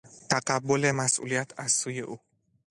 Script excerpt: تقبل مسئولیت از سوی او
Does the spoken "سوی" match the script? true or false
true